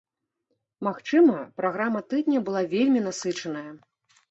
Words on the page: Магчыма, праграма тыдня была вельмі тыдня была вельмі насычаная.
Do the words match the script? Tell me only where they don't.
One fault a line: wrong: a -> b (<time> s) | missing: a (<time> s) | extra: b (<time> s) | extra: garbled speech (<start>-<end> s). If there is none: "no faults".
missing: тыдня была вельмі (3.1 s)